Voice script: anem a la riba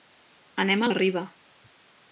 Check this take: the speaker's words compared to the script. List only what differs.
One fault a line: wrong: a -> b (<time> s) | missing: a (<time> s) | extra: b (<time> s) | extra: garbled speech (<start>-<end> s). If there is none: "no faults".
no faults